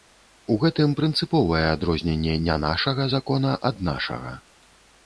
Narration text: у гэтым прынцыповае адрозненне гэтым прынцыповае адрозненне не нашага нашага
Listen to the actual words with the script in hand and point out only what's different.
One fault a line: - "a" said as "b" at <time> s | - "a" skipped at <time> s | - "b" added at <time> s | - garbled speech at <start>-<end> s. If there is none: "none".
- "гэтым прынцыповае адрозненне не нашага" said as "не нашага закона ад" at 2.5 s